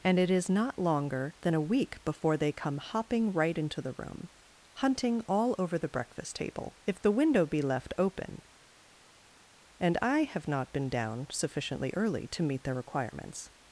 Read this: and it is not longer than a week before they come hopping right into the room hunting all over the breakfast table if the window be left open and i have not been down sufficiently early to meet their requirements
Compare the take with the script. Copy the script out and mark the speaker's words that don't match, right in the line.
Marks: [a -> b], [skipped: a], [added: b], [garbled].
and it is not longer than a week before they come hopping right into the room hunting all over the breakfast table if the window be left open and i have not been down sufficiently early to meet their requirements